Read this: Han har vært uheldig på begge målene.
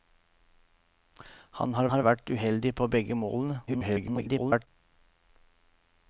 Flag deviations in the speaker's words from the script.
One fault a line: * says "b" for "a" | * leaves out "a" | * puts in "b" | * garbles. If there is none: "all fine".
* puts in "har"
* garbles